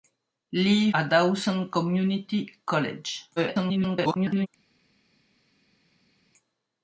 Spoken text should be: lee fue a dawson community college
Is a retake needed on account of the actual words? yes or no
yes